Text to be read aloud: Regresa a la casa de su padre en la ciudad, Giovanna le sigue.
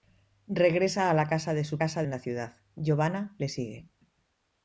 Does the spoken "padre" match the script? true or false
false